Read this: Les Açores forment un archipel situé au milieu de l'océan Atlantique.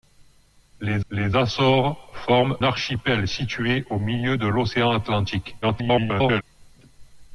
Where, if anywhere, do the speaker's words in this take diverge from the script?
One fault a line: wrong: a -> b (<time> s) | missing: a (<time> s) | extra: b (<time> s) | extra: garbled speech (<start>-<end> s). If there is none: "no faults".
extra: les (1.1 s)
missing: un (2.6 s)
extra: garbled speech (5.6-6.4 s)